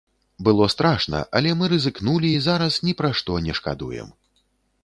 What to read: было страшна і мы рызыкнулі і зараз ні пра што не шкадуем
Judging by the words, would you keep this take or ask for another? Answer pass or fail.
fail